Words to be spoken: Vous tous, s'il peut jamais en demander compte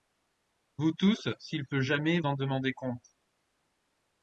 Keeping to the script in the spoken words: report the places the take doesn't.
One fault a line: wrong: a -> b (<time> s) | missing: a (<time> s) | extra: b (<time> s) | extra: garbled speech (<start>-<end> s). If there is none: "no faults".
no faults